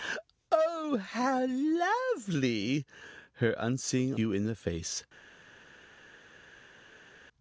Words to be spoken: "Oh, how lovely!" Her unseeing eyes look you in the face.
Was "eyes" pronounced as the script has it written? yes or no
no